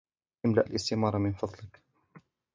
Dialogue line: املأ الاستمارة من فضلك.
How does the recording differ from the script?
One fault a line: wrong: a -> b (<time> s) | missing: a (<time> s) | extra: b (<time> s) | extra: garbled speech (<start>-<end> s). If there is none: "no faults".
no faults